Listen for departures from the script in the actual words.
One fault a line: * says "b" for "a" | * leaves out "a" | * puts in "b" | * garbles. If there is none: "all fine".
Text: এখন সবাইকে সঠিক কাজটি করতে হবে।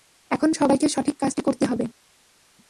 all fine